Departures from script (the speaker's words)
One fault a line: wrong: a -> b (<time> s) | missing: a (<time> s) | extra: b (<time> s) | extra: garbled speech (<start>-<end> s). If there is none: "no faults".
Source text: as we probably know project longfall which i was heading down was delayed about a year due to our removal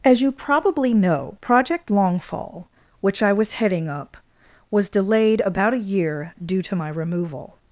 wrong: we -> you (0.2 s)
wrong: down -> up (3.9 s)
wrong: our -> my (6.7 s)